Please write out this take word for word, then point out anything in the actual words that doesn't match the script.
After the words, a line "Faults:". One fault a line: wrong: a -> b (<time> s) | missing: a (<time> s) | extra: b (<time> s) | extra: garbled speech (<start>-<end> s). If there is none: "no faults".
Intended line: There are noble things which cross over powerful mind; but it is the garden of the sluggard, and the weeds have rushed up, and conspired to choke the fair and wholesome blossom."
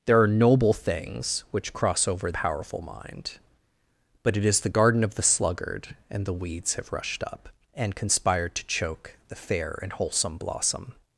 There are noble things which cross over powerful mind; but it is the garden of the sluggard, and the weeds have rushed up, and conspired to choke the fair and wholesome blossom."
Faults:
no faults